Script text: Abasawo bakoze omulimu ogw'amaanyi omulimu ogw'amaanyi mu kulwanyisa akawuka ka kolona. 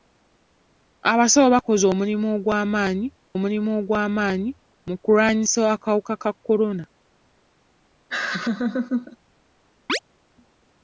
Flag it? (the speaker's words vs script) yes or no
no